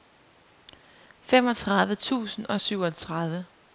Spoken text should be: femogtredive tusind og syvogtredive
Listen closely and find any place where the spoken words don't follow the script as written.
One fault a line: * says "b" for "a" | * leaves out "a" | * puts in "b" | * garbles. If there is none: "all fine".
all fine